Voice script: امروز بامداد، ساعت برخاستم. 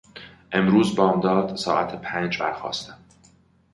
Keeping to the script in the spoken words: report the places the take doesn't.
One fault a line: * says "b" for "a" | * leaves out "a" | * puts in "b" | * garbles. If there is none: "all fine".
* puts in "پنج"